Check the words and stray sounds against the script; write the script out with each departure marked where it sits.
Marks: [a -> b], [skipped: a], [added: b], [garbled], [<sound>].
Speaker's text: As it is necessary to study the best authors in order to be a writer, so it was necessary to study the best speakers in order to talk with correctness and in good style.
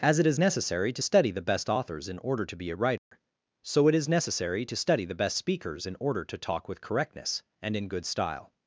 As it is necessary to study the best authors in order to be a writer, [dropout] so it [was -> is] necessary to study the best speakers in order to talk with correctness and in good style.